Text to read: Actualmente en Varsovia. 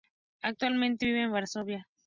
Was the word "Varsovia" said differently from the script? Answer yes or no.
no